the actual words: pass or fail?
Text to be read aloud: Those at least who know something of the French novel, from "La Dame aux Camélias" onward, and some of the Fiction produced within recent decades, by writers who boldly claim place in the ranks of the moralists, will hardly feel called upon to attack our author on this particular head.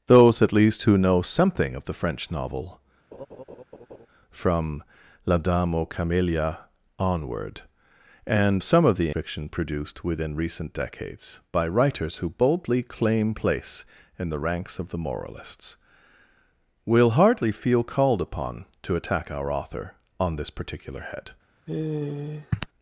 pass